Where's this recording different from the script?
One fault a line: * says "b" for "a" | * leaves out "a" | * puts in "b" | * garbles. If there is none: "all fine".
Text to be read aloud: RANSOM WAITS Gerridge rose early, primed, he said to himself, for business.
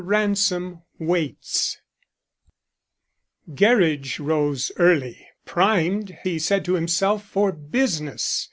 all fine